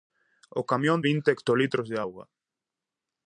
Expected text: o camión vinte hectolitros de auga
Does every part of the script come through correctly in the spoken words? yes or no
yes